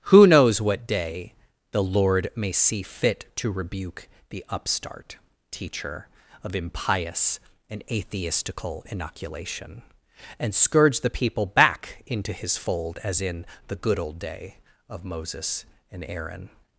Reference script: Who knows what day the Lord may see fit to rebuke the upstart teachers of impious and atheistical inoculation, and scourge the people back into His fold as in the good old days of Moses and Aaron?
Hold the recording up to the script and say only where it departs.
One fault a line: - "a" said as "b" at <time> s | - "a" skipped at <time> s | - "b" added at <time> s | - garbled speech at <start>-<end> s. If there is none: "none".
- "teachers" said as "teacher" at 5.5 s
- "days" said as "day" at 14.2 s